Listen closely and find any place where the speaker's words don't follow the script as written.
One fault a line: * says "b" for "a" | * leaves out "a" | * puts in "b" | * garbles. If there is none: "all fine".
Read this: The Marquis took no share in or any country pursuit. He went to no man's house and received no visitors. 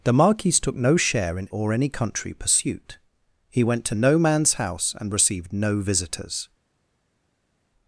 all fine